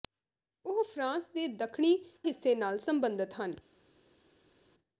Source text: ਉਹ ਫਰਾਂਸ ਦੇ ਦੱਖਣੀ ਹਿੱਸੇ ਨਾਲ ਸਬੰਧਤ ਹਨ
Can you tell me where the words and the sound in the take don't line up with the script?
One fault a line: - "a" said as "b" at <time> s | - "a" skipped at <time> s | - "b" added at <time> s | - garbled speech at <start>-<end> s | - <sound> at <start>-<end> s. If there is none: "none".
none